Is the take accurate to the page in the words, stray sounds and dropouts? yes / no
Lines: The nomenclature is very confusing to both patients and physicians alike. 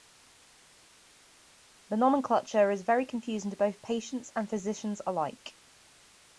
yes